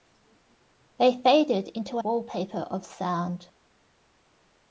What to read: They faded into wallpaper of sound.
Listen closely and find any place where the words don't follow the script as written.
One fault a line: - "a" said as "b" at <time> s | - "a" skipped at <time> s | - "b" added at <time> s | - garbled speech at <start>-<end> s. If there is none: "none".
none